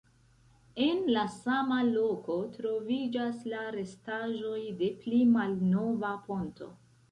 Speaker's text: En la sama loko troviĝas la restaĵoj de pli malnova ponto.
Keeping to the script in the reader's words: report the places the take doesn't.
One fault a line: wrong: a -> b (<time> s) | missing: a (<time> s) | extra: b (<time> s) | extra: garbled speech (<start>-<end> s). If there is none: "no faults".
no faults